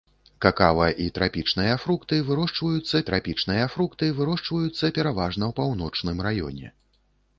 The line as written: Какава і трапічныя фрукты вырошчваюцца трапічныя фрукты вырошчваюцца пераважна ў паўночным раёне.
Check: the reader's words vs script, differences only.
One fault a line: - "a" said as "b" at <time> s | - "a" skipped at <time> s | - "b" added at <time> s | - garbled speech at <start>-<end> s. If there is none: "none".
none